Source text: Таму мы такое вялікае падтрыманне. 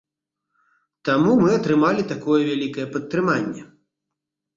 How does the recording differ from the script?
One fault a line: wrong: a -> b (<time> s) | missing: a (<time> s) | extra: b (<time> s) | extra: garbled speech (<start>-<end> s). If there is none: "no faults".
extra: атрымалі (1.5 s)